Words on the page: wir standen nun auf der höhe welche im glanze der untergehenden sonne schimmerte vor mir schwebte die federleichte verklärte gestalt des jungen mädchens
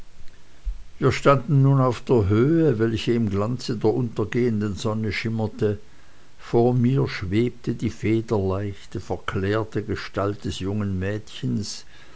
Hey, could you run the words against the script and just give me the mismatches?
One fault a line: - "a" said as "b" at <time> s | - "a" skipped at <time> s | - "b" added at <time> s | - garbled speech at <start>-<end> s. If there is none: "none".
none